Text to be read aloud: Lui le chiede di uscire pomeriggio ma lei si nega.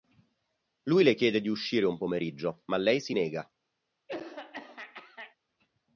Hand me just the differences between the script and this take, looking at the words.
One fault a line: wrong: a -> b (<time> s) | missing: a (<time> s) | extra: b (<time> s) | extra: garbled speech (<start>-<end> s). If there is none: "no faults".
extra: un (1.9 s)